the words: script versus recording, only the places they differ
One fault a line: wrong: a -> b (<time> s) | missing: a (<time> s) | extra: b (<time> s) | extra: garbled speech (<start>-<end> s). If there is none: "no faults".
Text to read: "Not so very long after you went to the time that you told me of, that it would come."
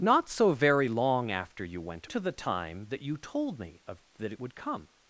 no faults